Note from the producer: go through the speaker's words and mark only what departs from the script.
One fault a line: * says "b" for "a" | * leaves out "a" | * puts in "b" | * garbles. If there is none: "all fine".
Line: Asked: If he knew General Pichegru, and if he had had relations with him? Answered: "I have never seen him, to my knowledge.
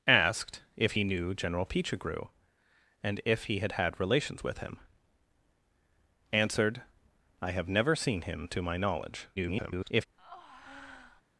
* garbles